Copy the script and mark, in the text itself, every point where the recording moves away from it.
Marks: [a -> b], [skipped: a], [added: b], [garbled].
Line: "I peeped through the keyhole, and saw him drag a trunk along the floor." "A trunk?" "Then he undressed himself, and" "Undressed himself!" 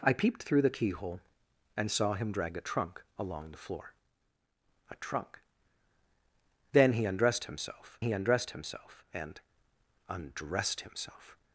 "I peeped through the keyhole, and saw him drag a trunk along the floor." "A trunk?" "Then he undressed himself, [added: he undressed himself] and" "Undressed himself!"